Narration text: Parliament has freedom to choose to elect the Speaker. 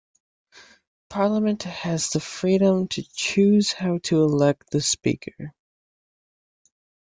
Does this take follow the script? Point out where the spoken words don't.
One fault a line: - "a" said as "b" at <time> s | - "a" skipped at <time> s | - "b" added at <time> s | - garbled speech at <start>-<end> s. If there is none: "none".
- "the" added at 2.1 s
- "how" added at 3.7 s